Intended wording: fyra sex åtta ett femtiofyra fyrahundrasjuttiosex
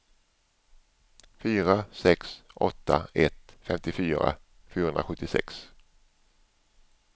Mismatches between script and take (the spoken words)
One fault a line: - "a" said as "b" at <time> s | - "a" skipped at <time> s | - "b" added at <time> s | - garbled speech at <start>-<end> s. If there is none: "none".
none